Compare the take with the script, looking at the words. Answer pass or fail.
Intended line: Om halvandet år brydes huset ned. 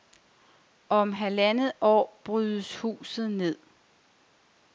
pass